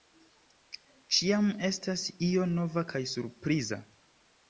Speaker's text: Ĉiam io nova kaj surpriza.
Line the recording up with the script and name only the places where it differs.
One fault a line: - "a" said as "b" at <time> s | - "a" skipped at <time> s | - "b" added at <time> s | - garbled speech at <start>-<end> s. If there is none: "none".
- "estas" added at 1.7 s